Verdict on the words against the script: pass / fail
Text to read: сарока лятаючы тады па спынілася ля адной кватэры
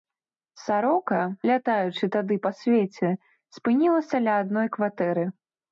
fail